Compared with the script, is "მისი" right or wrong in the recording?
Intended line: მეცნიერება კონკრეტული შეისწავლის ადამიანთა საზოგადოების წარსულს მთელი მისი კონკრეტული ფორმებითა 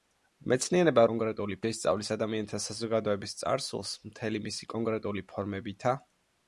right